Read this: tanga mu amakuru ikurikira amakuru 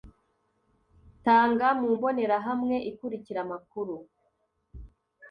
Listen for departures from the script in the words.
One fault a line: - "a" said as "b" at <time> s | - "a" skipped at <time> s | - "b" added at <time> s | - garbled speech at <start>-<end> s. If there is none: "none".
- "amakuru" said as "mbonerahamwe" at 1.9 s